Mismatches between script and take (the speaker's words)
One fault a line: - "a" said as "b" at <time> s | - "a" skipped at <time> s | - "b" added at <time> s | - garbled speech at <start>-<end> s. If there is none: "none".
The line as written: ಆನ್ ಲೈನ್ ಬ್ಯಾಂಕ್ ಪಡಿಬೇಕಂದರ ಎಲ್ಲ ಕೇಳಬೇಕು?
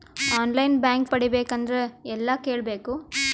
none